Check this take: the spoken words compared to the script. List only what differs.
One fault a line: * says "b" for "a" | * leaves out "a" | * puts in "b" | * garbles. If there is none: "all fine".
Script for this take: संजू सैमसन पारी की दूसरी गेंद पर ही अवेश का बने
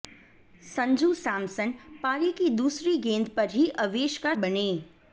all fine